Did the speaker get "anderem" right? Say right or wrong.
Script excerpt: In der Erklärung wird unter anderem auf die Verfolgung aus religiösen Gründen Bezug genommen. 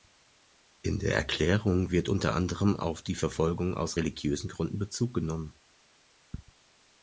right